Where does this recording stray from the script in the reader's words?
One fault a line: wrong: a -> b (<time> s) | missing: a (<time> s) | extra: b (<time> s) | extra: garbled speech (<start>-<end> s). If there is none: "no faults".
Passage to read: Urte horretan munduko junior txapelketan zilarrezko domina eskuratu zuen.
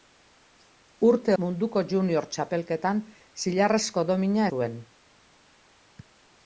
missing: horretan (1.4 s)
missing: eskuratu (4.5 s)